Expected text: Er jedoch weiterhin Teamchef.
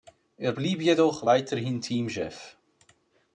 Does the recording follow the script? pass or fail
fail